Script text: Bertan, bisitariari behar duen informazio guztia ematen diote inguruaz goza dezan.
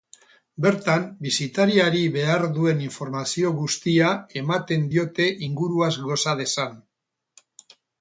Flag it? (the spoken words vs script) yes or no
no